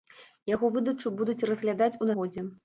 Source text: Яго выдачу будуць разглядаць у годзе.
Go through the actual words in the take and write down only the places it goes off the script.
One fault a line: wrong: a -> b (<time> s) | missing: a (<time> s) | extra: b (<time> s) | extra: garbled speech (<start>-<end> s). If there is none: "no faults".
no faults